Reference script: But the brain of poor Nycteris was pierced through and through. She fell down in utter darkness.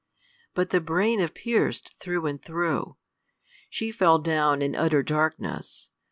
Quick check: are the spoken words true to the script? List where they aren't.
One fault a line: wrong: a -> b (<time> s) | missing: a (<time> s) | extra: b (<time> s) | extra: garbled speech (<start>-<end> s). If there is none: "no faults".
missing: poor Nycteris was (1.4 s)